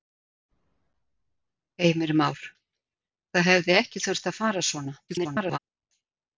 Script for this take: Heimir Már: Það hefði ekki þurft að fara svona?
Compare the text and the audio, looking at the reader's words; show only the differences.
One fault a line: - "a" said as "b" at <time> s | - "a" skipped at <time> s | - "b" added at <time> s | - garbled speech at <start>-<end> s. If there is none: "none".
- garbled speech at 5.1-5.6 s